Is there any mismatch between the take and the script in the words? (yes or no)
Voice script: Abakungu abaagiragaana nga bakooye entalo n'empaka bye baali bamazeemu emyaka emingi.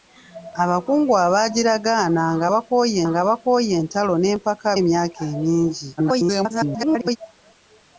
yes